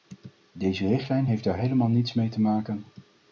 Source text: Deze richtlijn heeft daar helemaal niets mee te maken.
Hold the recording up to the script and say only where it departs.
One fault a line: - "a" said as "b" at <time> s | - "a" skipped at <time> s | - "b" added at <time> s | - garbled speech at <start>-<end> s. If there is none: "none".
none